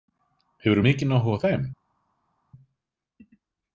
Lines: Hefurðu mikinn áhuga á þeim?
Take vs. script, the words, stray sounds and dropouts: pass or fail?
pass